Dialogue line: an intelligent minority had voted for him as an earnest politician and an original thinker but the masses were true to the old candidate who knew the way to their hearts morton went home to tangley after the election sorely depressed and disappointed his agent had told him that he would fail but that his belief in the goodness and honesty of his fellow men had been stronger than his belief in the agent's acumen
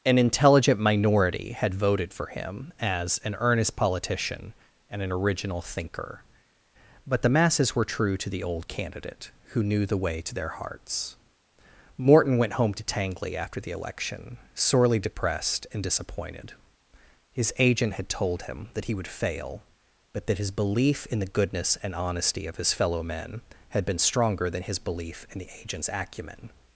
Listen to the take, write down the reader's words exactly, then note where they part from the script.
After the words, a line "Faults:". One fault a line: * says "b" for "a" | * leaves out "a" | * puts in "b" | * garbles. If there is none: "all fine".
an intelligent minority had voted for him as an earnest politician and an original thinker but the masses were true to the old candidate who knew the way to their hearts morton went home to tangley after the election sorely depressed and disappointed his agent had told him that he would fail but that his belief in the goodness and honesty of his fellow men had been stronger than his belief in the agent's acumen
Faults:
all fine